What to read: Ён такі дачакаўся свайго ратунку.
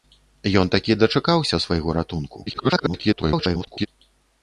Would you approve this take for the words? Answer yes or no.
no